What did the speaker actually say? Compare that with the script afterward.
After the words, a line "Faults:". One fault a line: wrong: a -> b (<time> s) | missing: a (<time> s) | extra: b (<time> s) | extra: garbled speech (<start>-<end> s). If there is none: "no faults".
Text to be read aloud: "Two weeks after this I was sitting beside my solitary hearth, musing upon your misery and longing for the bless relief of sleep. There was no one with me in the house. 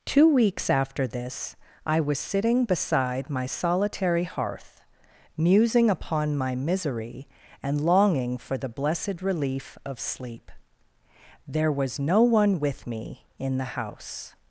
"Two weeks after this I was sitting beside my solitary hearth, musing upon my misery and longing for the blessed relief of sleep. There was no one with me in the house.
Faults:
wrong: your -> my (6.4 s)
wrong: bless -> blessed (8.7 s)